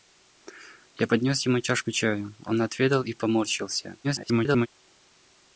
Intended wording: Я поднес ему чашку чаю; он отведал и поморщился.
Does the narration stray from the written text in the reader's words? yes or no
yes